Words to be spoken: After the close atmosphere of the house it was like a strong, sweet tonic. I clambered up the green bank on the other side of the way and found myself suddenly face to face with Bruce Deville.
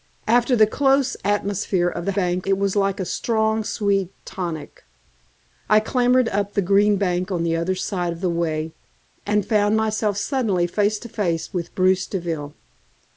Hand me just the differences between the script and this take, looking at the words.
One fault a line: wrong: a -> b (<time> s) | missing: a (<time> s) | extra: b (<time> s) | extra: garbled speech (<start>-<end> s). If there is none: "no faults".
wrong: house -> bank (2.1 s)